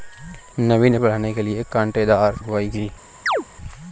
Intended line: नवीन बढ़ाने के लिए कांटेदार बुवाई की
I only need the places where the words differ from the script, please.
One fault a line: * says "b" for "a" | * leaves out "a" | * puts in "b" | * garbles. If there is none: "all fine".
all fine